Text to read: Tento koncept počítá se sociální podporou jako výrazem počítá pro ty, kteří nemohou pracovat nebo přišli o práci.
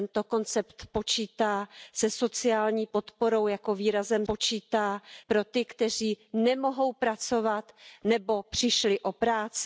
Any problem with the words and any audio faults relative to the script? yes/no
no